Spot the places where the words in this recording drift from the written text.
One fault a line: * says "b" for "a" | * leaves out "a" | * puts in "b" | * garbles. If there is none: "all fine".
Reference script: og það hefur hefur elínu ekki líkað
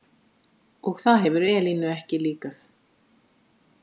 * leaves out "hefur"